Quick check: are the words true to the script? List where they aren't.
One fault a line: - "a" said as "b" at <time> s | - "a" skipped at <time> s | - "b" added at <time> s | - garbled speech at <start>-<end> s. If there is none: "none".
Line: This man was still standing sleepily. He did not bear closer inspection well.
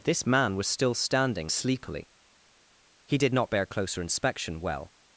none